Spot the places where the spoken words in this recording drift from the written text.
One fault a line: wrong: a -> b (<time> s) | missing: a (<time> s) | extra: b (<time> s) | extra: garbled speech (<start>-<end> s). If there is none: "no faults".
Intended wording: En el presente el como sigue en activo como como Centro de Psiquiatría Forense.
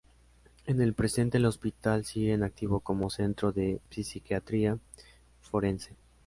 wrong: como -> hospital (1.4 s)
missing: como (3.1 s)